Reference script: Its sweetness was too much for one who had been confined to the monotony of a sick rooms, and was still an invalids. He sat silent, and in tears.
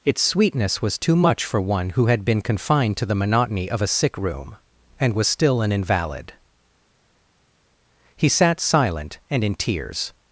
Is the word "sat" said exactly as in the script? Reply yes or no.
yes